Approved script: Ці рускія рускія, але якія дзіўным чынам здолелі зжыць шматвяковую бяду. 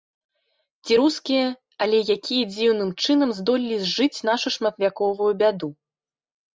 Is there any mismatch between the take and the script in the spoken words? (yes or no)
yes